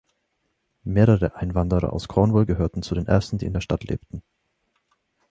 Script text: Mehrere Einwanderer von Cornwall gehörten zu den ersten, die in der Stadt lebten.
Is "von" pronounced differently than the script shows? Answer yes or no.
yes